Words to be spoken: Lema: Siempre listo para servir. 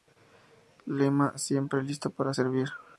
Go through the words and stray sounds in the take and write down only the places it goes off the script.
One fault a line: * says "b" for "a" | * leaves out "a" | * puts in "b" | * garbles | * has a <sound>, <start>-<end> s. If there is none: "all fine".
all fine